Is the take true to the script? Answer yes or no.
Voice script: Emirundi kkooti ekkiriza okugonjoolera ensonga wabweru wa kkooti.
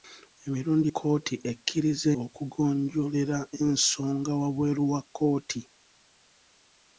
yes